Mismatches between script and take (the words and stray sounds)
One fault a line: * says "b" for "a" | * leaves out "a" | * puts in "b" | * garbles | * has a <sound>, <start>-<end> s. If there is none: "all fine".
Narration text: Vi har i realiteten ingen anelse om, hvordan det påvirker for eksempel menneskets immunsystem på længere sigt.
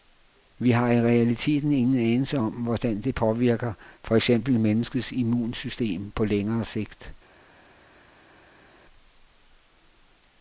all fine